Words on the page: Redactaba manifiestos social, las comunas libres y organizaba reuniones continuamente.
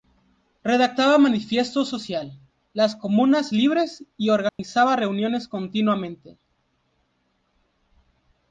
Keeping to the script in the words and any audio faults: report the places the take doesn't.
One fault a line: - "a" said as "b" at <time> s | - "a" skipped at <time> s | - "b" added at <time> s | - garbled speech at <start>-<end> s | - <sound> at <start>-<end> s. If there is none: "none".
- dropout at 4.5-4.6 s